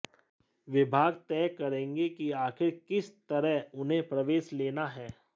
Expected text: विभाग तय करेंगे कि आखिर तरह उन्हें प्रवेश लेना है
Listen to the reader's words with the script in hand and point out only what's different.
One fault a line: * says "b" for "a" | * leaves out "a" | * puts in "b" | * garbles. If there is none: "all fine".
* puts in "किस"